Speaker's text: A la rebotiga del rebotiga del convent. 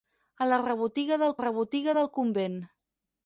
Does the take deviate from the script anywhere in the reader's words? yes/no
no